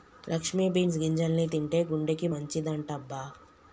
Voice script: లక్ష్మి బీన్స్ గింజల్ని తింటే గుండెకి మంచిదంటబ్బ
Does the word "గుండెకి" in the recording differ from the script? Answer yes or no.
no